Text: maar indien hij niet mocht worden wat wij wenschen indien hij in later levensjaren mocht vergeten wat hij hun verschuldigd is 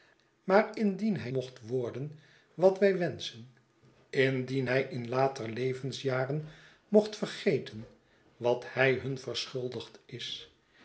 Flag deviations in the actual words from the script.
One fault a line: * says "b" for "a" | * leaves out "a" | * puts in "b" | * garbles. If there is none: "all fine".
* leaves out "niet"